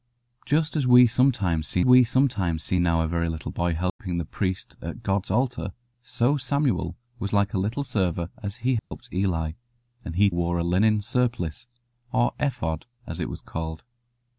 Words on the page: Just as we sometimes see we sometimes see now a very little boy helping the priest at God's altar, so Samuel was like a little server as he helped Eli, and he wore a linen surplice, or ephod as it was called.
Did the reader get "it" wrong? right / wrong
right